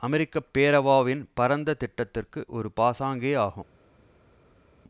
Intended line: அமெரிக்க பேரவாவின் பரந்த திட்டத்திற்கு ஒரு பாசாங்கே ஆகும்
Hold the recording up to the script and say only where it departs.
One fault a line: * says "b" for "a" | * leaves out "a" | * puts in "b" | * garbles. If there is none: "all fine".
all fine